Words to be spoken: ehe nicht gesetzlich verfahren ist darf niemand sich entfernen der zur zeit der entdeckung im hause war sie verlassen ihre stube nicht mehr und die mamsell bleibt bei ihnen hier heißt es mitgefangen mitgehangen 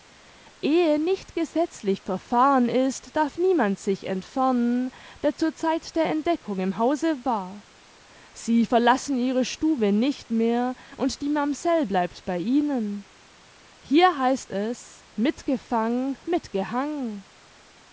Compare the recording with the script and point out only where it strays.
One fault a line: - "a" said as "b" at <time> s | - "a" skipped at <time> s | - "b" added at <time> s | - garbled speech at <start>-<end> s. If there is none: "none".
none